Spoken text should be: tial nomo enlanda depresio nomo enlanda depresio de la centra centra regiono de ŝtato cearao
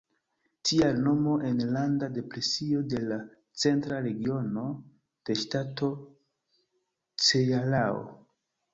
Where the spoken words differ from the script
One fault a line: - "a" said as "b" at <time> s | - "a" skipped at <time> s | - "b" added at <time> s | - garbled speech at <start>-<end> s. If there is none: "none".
- "nomo enlanda depresio" skipped at 2.8 s
- "centra" skipped at 4.0 s